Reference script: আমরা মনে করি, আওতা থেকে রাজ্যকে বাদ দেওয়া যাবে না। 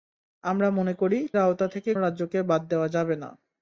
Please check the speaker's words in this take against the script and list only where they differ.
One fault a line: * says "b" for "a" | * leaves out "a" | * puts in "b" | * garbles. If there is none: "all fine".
all fine